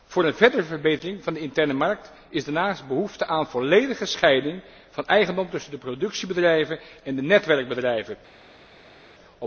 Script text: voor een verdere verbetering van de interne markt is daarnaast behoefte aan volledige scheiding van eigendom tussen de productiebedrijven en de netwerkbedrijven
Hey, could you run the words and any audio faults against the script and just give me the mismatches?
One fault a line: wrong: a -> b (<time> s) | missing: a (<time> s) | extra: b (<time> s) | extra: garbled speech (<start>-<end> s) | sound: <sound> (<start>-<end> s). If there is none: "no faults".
no faults